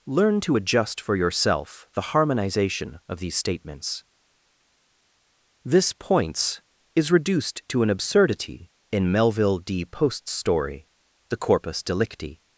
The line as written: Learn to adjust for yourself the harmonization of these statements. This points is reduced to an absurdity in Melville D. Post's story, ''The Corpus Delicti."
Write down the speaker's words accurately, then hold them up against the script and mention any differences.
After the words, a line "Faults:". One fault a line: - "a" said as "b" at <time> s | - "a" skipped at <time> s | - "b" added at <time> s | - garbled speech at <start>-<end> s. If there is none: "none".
Learn to adjust for yourself the harmonization of these statements. This points is reduced to an absurdity in Melville D. Post's story, ''The Corpus Delicti."
Faults:
none